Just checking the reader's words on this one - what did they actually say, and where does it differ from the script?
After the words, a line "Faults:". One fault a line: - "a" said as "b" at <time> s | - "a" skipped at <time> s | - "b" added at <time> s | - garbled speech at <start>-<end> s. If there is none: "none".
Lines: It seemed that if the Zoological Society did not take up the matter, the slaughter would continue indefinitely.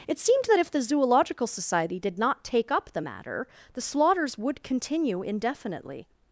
It seemed that if the Zoological Society did not take up the matter, the slaughters would continue indefinitely.
Faults:
- "slaughter" said as "slaughters" at 3.8 s